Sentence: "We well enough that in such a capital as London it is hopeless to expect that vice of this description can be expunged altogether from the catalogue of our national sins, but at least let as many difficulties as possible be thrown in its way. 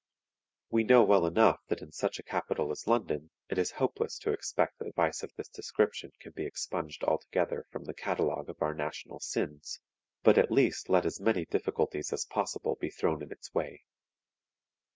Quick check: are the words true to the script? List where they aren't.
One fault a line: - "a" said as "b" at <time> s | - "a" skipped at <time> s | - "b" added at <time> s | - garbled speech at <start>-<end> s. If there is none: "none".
- "know" added at 0.8 s